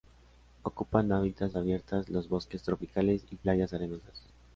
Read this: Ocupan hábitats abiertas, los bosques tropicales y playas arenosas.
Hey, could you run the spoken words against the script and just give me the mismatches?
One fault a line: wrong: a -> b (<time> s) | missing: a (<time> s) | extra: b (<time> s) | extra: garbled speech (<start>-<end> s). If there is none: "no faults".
no faults